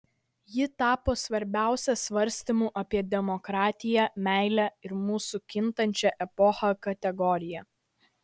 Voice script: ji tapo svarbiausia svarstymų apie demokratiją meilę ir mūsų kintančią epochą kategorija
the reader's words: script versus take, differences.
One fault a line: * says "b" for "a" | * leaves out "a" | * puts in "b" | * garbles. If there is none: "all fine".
all fine